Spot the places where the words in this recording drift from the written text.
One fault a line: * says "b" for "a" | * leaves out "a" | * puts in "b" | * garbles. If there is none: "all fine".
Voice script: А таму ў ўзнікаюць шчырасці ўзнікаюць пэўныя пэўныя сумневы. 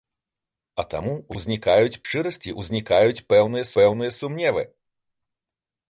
all fine